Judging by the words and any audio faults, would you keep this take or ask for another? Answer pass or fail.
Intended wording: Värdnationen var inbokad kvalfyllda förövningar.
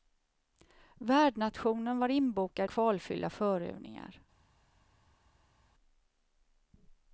pass